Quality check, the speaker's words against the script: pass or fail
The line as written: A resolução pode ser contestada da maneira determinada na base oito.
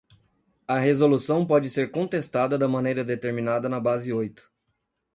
pass